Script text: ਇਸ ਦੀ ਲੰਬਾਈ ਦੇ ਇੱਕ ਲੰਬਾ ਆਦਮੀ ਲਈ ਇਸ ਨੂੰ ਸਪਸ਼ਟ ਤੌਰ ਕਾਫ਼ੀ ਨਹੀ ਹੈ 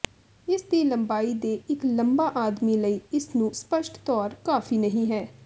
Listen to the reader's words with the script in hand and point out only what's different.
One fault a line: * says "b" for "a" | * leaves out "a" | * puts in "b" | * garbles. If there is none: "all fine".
all fine